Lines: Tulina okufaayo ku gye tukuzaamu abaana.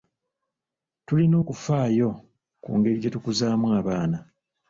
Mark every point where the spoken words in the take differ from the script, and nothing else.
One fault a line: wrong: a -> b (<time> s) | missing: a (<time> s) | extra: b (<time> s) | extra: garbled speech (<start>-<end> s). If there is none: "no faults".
extra: ngeri (2.8 s)